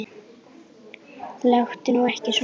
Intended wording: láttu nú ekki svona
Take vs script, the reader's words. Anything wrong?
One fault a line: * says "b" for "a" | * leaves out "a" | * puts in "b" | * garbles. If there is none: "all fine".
all fine